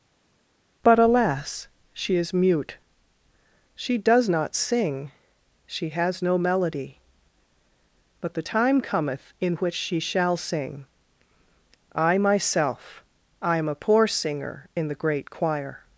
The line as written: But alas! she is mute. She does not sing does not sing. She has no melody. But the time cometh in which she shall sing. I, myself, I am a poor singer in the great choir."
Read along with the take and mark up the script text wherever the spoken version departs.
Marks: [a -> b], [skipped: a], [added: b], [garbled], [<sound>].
But alas! she is mute. She does not sing [skipped: does not sing.] She has no melody. But the time cometh in which she shall sing. I, myself, I am a poor singer in the great choir."